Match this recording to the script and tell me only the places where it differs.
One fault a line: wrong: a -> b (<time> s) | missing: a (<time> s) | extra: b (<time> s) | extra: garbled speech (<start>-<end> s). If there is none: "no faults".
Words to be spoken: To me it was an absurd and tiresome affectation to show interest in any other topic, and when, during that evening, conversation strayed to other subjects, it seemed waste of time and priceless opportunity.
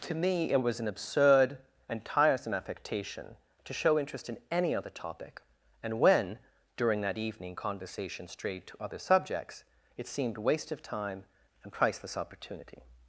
no faults